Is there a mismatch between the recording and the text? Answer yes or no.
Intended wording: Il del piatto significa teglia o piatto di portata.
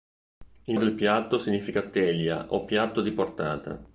no